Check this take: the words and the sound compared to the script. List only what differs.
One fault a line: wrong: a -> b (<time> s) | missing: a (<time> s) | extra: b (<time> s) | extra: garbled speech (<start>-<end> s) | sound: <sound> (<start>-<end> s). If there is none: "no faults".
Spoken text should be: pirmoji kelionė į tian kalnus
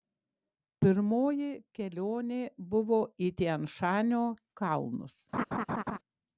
extra: buvo (2.7 s)
extra: šanio (3.8 s)
sound: laugh (5.3-6.0 s)